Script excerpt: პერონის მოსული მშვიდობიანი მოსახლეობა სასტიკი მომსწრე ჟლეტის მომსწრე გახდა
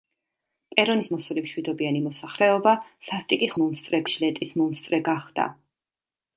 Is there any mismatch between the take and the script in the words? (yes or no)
no